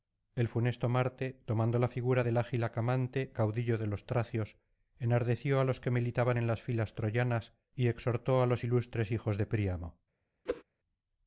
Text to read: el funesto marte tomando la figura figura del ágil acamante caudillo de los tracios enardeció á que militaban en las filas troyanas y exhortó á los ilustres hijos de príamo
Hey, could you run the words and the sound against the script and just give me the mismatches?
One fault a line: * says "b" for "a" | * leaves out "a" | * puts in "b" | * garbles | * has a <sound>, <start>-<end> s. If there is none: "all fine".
* leaves out "figura"
* puts in "los"
* has a whoosh, 10.5-10.6 s